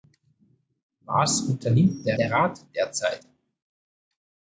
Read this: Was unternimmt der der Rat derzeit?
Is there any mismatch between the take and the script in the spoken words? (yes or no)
no